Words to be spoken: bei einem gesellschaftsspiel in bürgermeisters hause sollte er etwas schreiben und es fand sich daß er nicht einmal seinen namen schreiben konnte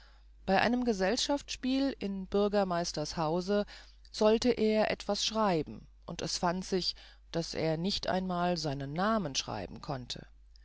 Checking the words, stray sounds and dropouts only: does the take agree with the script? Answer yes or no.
yes